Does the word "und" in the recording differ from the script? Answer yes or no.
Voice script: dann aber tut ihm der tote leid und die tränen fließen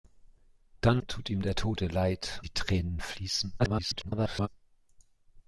yes